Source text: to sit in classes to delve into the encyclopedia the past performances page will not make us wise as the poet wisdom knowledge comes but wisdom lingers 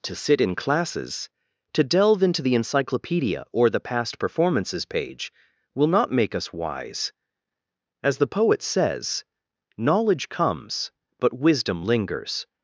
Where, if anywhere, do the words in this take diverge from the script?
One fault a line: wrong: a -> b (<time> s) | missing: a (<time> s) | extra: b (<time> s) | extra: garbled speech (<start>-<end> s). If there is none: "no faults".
extra: or (3.5 s)
wrong: wisdom -> says (8.6 s)